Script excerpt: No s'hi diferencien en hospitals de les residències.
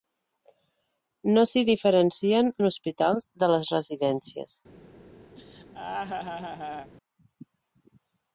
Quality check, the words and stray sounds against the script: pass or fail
fail